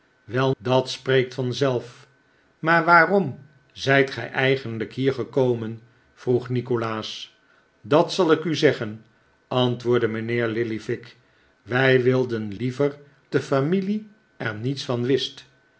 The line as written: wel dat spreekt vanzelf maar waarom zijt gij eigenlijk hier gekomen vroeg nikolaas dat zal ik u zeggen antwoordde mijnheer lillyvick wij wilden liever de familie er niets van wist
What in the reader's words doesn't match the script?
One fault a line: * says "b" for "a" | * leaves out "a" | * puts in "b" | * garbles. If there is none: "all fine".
all fine